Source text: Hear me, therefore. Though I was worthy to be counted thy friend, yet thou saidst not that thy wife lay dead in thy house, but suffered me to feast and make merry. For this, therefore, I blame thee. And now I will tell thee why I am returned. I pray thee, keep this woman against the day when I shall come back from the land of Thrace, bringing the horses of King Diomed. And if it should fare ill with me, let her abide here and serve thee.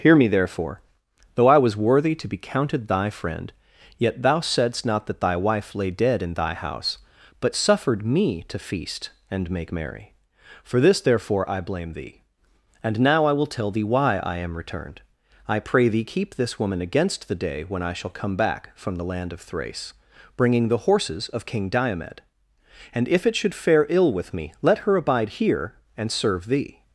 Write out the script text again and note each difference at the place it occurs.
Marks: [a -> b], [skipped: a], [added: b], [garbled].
Hear me, therefore. Though I was worthy to be counted thy friend, yet thou saidst not that thy wife lay dead in thy house, but suffered me to feast and make merry. For this, therefore, I blame thee. And now I will tell thee why I am returned. I pray thee, keep this woman against the day when I shall come back from the land of Thrace, bringing the horses of King Diomed. And if it should fare ill with me, let her abide here and serve thee.